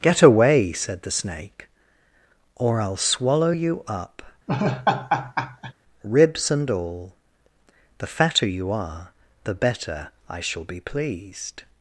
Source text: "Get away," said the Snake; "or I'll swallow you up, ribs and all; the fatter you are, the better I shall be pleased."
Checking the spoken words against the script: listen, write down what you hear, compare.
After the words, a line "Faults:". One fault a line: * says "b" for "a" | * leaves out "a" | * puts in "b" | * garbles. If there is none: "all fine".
"Get away," said the Snake; "or I'll swallow you up, ribs and all; the fatter you are, the better I shall be pleased."
Faults:
all fine